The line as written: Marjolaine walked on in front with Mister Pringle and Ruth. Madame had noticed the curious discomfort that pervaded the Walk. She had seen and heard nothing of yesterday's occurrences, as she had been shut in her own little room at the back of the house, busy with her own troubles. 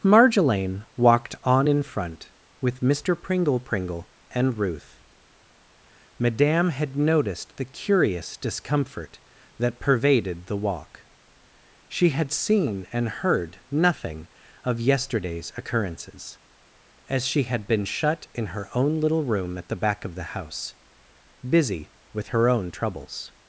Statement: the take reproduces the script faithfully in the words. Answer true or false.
false